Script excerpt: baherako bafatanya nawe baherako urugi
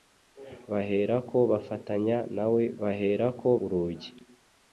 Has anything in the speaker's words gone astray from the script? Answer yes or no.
no